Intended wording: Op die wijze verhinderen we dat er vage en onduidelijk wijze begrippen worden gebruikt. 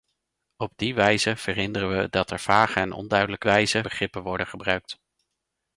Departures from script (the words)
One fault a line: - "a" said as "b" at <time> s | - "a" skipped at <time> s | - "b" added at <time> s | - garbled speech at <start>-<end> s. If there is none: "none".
none